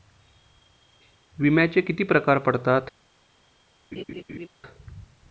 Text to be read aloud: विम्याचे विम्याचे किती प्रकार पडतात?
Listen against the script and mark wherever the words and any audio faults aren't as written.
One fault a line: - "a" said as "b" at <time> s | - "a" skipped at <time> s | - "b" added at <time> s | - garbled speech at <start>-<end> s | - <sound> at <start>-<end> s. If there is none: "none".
- "विम्याचे" skipped at 1.8 s
- laugh at 3.9-4.5 s